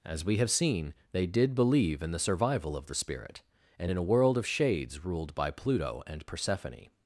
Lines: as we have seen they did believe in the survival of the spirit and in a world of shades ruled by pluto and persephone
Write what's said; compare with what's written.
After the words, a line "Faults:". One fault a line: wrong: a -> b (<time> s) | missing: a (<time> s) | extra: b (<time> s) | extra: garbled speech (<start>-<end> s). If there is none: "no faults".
as we have seen they did believe in the survival of the spirit and in a world of shades ruled by pluto and persephone
Faults:
no faults